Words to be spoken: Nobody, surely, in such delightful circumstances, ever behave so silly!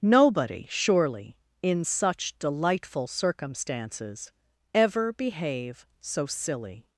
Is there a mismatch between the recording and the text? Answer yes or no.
no